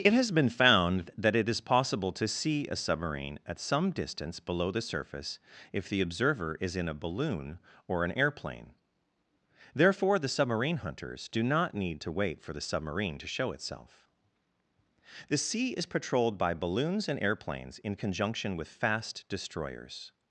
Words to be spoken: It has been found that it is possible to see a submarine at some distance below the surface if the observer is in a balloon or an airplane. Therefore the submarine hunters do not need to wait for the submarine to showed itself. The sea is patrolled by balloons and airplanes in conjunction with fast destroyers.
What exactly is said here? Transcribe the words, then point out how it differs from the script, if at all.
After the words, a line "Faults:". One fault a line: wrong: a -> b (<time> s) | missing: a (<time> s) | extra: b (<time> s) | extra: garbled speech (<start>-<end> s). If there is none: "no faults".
It has been found that it is possible to see a submarine at some distance below the surface if the observer is in a balloon or an airplane. Therefore the submarine hunters do not need to wait for the submarine to show itself. The sea is patrolled by balloons and airplanes in conjunction with fast destroyers.
Faults:
wrong: showed -> show (13.3 s)